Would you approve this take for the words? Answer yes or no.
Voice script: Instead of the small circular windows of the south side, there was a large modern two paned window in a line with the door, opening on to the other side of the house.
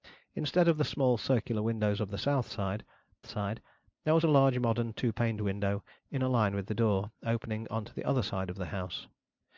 no